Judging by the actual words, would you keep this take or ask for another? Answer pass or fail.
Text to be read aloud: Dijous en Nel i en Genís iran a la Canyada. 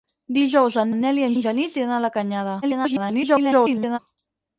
fail